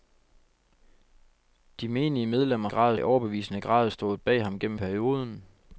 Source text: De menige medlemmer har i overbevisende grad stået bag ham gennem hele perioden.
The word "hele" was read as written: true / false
false